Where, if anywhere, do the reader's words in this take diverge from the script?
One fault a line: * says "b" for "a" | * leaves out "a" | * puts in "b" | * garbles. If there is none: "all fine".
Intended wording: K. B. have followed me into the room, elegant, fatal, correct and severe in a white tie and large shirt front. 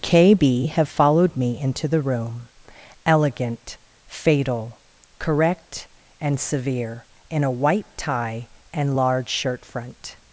all fine